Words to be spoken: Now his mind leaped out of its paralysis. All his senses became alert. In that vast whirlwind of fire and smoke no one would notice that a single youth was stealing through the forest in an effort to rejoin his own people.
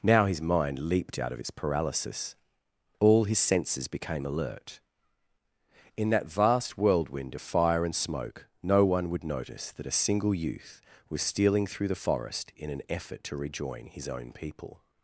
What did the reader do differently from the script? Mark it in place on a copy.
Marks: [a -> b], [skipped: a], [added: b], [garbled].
Now his mind leaped out of its paralysis. All his senses became alert. In that vast whirlwind of fire and smoke no one would notice that a single youth was stealing through the forest in an effort to rejoin his own people.